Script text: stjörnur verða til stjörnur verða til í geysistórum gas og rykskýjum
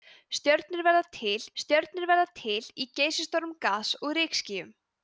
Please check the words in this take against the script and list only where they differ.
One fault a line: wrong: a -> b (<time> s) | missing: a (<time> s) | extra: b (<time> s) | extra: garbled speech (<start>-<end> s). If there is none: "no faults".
no faults